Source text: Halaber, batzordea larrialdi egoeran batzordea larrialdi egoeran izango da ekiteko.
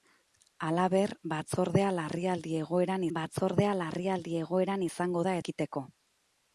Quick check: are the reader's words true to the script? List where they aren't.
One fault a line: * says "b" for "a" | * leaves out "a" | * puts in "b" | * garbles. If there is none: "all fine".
all fine